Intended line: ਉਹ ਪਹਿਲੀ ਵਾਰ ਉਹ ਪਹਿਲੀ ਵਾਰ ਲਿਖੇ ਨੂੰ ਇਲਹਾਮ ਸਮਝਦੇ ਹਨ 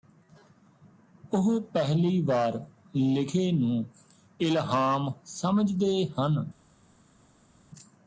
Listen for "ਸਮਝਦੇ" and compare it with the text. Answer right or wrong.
right